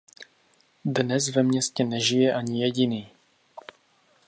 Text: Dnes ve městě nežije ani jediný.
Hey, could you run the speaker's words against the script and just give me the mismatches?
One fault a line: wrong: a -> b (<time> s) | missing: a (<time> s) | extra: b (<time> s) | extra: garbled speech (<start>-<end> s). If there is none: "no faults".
no faults